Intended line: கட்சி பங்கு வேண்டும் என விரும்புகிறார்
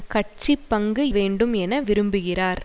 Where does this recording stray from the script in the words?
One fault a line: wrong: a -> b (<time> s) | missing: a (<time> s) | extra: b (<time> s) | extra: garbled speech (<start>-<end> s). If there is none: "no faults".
no faults